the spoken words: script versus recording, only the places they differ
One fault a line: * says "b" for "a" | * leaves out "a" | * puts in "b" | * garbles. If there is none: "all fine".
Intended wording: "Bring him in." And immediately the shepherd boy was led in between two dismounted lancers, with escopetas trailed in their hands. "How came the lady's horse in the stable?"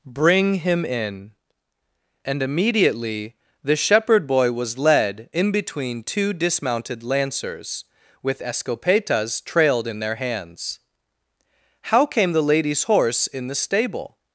all fine